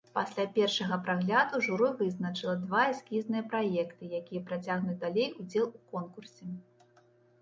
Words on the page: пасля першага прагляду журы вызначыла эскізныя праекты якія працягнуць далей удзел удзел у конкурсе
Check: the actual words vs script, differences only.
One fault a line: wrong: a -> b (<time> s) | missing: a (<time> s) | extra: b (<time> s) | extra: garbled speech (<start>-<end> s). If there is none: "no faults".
extra: два (2.6 s)
missing: удзел (5.7 s)